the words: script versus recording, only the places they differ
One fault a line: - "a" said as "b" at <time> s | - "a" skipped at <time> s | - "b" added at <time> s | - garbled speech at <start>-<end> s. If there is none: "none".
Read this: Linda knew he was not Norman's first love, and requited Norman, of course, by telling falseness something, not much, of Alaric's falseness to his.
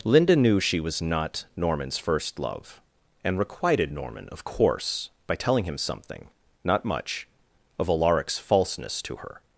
- "he" said as "she" at 0.6 s
- "falseness" said as "him" at 5.6 s
- "his" said as "her" at 9.2 s